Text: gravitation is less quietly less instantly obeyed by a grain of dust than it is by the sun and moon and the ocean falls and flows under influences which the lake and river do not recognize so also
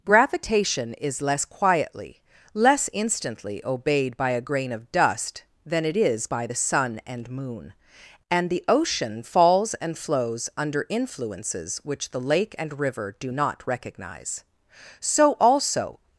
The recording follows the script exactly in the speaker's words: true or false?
true